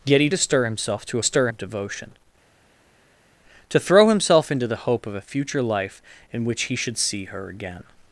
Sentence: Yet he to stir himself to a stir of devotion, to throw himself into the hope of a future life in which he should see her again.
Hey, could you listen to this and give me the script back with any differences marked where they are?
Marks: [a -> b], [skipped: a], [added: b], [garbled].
Yet he to stir himself to a stir of devotion, to throw himself into the hope of a future life in which he should see her again.